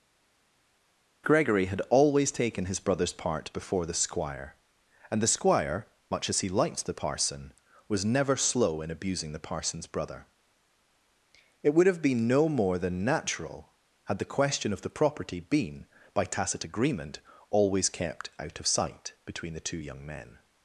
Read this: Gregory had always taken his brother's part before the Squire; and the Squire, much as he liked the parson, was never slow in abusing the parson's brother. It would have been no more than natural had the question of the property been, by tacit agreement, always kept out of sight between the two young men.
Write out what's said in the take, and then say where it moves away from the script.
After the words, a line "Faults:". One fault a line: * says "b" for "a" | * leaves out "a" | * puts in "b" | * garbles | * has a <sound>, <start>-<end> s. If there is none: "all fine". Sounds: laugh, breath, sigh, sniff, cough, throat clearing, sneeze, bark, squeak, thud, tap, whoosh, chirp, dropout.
Gregory had always taken his brother's part before the Squire; and the Squire, much as he liked the parson, was never slow in abusing the parson's brother. It would have been no more than natural had the question of the property been, by tacit agreement, always kept out of sight between the two young men.
Faults:
all fine